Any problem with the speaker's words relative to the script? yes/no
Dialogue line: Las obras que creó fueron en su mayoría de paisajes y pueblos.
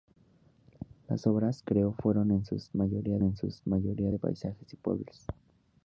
yes